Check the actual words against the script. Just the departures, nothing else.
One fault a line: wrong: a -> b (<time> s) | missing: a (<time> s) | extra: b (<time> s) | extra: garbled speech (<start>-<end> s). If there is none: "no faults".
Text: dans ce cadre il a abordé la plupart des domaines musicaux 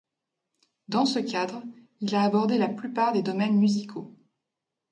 no faults